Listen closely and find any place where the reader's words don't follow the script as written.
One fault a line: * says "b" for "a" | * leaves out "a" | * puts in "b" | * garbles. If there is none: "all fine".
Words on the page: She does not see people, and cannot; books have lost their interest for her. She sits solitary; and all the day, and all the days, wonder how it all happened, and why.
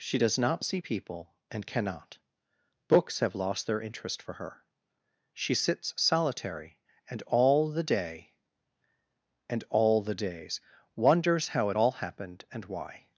* says "wonders" for "wonder"